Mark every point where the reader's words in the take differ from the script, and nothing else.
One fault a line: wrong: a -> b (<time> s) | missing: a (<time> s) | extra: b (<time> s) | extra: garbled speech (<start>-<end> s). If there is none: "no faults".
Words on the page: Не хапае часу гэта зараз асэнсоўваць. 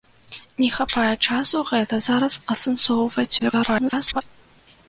extra: garbled speech (3.4-4.2 s)